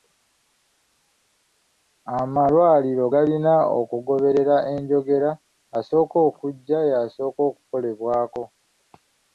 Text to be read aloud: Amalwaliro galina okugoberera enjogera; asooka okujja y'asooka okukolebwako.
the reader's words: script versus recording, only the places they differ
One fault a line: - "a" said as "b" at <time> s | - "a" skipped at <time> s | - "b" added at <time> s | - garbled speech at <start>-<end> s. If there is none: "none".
none